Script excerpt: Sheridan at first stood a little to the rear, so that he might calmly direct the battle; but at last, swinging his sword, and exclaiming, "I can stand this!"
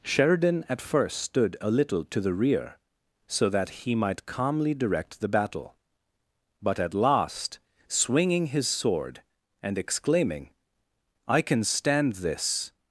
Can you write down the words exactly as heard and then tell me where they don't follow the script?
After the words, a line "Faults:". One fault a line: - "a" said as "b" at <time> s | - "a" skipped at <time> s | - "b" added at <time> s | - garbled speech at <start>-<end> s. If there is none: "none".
Sheridan at first stood a little to the rear, so that he might calmly direct the battle; but at last, swinging his sword, and exclaiming, "I can stand this!"
Faults:
none